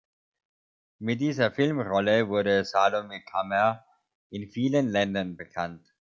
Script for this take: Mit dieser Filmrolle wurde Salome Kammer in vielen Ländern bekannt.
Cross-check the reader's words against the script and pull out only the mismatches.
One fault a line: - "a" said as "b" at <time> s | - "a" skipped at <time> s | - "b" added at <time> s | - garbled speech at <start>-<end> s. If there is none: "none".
none